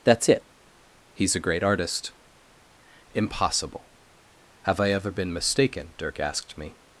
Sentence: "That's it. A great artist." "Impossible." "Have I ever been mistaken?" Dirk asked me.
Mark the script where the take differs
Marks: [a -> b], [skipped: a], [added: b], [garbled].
"That's it. [added: He's] A great artist." "Impossible." "Have I ever been mistaken?" Dirk asked me.